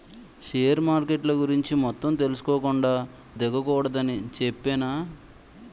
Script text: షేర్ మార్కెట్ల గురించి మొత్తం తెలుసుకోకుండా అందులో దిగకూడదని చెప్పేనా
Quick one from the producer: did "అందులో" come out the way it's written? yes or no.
no